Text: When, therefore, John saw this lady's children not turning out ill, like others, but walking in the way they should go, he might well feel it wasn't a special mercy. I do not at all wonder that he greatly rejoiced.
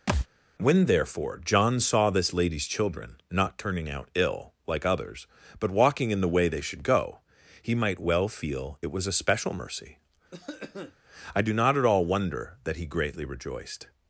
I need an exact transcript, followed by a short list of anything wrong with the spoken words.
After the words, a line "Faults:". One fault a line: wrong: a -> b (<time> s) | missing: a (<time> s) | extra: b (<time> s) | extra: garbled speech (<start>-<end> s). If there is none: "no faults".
When, therefore, John saw this lady's children not turning out ill, like others, but walking in the way they should go, he might well feel it was a special mercy. I do not at all wonder that he greatly rejoiced.
Faults:
wrong: wasn't -> was (8.9 s)